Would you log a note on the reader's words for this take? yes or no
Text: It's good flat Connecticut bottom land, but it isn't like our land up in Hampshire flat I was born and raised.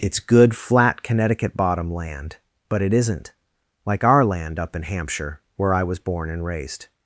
yes